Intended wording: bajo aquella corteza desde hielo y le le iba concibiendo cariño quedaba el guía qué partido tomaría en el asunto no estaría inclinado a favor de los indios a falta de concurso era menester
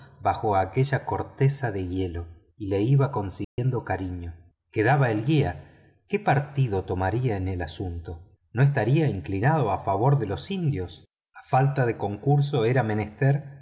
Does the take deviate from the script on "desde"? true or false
true